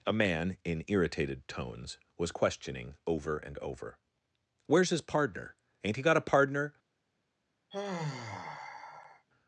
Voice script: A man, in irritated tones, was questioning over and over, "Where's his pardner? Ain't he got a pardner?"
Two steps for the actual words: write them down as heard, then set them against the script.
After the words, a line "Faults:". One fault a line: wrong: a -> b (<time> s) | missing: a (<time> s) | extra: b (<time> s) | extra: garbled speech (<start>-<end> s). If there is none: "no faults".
A man, in irritated tones, was questioning over and over, "Where's his pardner? Ain't he got a pardner?"
Faults:
no faults